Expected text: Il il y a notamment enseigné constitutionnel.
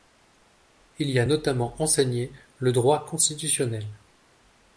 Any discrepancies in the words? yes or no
yes